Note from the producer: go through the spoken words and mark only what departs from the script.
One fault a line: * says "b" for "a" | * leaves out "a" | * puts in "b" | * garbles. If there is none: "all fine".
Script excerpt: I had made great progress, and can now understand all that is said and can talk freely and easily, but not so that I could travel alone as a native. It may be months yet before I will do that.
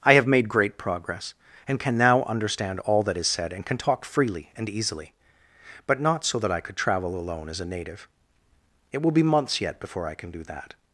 * says "have" for "had"
* says "will" for "may"
* says "can" for "will"